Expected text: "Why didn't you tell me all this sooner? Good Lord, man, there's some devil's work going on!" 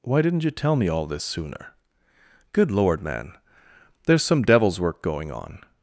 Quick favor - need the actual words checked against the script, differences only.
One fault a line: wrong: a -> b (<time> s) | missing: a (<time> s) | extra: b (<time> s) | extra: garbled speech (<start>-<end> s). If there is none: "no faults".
no faults